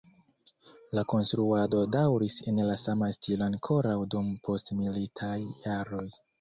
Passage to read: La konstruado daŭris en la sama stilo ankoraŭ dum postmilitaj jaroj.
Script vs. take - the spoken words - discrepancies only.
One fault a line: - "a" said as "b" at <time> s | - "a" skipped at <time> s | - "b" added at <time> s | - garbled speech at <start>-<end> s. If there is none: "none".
none